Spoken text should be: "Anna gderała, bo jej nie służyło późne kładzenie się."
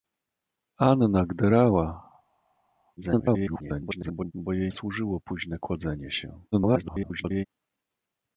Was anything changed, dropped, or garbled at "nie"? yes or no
yes